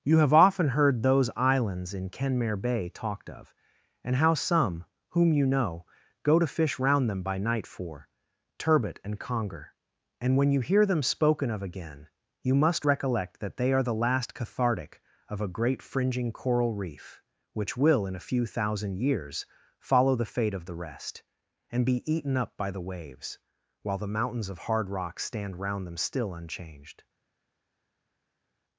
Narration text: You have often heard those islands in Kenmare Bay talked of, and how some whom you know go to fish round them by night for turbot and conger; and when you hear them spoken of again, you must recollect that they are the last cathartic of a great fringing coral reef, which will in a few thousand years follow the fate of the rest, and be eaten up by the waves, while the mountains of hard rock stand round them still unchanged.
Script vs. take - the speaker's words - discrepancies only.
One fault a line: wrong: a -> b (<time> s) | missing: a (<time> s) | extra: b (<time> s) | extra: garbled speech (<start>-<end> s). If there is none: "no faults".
no faults